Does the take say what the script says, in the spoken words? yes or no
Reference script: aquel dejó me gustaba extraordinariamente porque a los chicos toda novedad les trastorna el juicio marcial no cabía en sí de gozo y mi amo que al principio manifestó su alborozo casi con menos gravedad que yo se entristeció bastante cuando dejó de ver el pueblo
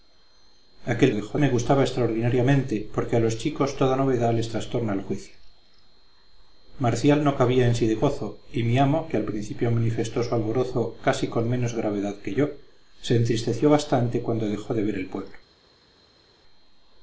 yes